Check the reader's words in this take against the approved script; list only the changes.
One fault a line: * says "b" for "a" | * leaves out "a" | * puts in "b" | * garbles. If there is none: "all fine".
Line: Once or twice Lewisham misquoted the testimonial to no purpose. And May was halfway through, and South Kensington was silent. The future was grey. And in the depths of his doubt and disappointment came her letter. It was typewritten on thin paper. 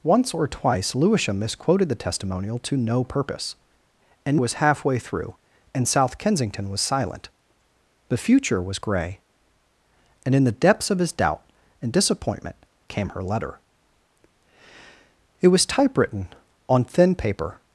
* leaves out "May"